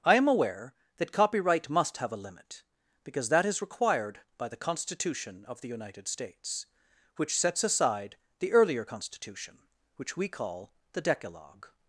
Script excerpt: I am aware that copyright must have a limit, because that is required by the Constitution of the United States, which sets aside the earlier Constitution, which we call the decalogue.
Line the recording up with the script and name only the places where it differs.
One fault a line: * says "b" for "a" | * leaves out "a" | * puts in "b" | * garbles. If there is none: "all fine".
all fine